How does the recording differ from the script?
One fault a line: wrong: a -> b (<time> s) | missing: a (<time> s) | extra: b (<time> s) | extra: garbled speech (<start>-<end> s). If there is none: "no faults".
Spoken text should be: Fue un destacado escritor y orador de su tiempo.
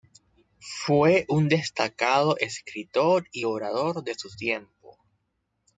no faults